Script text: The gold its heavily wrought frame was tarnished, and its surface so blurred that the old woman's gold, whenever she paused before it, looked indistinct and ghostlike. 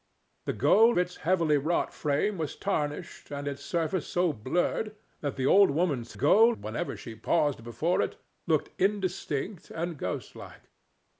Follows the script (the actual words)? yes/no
yes